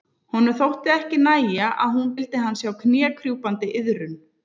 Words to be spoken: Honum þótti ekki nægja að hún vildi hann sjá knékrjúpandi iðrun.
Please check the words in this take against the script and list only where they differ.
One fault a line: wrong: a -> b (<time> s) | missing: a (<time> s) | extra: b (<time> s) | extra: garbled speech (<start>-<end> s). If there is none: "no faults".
no faults